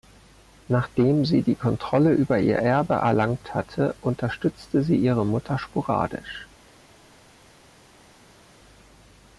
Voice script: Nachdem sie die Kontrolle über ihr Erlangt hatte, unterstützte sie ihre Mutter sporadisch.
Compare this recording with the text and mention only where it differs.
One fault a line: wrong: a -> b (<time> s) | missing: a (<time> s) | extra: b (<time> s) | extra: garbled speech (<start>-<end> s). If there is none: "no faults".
extra: Erbe (2.6 s)